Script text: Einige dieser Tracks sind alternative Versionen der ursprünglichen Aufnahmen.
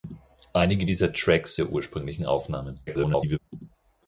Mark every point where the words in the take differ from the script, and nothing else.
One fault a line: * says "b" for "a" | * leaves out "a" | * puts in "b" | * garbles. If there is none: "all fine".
* leaves out "sind alternative Versionen"
* garbles